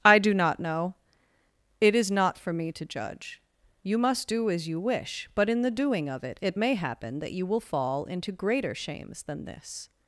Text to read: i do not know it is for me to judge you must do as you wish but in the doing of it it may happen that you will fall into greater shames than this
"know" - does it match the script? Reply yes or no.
yes